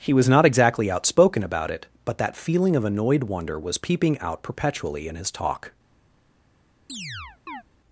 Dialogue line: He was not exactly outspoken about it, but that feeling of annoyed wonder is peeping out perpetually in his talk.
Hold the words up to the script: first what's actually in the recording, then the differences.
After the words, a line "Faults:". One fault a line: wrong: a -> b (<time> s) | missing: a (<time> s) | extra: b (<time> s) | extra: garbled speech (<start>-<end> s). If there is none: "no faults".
He was not exactly outspoken about it, but that feeling of annoyed wonder was peeping out perpetually in his talk.
Faults:
wrong: is -> was (3.6 s)